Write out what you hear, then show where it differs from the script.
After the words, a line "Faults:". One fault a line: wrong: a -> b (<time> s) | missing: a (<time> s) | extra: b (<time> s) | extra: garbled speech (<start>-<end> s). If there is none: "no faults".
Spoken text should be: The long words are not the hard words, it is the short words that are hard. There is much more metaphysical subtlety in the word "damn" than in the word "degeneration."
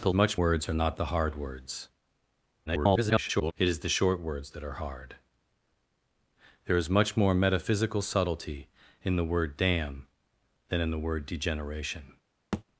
The much words are not the hard words, [garbled] it is the short words that are hard. There is much more metaphysical subtlety in the word "damn" than in the word "degeneration."
Faults:
wrong: long -> much (0.1 s)
extra: garbled speech (2.7-3.5 s)